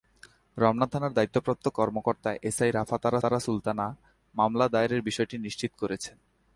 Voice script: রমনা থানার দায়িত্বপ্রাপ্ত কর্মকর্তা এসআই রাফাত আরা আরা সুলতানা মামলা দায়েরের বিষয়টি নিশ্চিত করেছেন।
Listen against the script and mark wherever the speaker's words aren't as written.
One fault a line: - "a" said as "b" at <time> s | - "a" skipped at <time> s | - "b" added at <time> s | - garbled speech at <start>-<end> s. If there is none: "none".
none